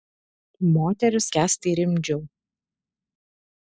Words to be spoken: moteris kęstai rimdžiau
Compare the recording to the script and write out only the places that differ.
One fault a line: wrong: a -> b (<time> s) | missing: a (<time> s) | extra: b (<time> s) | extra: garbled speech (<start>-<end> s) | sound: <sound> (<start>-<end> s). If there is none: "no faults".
no faults